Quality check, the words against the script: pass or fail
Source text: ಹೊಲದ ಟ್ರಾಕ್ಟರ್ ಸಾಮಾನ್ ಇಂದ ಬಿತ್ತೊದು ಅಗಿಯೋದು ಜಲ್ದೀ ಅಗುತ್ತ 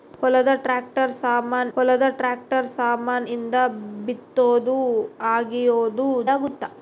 fail